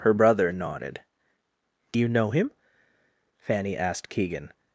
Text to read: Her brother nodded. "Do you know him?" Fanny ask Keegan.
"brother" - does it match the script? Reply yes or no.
yes